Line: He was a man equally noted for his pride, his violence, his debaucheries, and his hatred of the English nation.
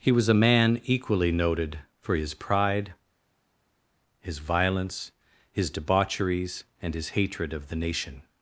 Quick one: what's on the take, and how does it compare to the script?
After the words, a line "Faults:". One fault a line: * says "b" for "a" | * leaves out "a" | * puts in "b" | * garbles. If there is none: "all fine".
He was a man equally noted for his pride, his violence, his debaucheries, and his hatred of the nation.
Faults:
* leaves out "English"